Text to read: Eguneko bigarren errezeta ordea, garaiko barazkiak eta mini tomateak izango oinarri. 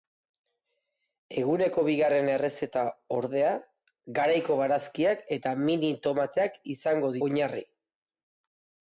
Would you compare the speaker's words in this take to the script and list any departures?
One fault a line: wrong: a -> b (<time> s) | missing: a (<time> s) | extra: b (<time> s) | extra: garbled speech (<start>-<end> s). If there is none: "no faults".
no faults